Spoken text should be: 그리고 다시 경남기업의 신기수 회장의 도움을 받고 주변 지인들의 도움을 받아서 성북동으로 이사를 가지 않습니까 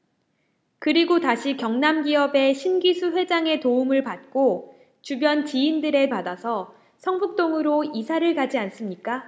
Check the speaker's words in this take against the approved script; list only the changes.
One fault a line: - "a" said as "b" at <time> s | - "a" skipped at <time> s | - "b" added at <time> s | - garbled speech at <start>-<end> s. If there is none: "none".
- "도움을" skipped at 6.1 s